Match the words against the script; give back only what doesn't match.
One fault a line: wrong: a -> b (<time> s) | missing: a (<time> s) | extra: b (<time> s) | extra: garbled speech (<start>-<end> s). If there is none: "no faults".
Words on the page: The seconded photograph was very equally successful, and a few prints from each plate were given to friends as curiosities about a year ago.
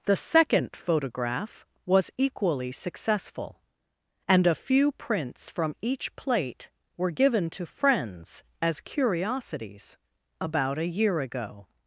wrong: seconded -> second (0.1 s)
missing: very (2.1 s)